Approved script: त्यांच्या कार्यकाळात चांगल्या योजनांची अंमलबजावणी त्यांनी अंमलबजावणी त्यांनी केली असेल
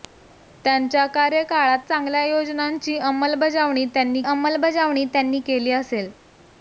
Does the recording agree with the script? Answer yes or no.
yes